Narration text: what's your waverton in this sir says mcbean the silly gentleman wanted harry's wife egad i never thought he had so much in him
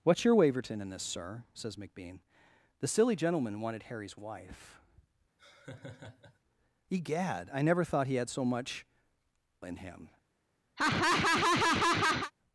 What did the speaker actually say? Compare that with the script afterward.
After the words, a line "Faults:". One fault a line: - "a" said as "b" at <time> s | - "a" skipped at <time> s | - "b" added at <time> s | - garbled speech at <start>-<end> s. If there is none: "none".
what's your waverton in this sir says mcbean the silly gentleman wanted harry's wife egad i never thought he had so much in him
Faults:
none